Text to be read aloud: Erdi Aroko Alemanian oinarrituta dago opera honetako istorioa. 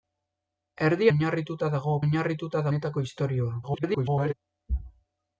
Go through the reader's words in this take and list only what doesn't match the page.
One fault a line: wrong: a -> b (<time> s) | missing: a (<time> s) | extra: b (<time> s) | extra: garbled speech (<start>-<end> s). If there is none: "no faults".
missing: Aroko Alemanian (1.1 s)
wrong: opera -> oinarrituta (2.1 s)
extra: garbled speech (3.6-4.3 s)